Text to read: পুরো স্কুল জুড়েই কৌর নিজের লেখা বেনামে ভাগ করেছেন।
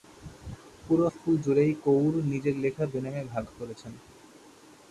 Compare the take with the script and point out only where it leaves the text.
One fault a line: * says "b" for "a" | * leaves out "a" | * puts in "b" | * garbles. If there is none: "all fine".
all fine